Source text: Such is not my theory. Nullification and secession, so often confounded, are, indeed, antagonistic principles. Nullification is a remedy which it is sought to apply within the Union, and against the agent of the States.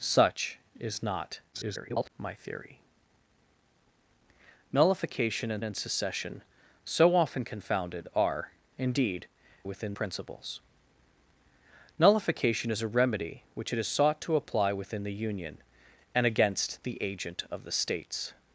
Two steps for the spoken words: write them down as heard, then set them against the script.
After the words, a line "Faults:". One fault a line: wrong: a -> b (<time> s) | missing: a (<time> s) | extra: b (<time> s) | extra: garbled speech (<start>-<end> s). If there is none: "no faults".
Such is not [garbled] my theory. Nullification and and secession, so often confounded, are, indeed, within principles. Nullification is a remedy which it is sought to apply within the Union, and against the agent of the States.
Faults:
extra: garbled speech (1.5-2.1 s)
extra: and (5.6 s)
wrong: antagonistic -> within (9.6 s)